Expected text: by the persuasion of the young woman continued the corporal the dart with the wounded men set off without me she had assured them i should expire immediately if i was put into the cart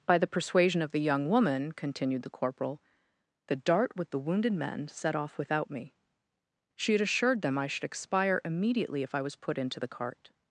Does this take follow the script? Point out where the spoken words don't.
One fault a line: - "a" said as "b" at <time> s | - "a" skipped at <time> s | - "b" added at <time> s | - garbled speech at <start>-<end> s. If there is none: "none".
none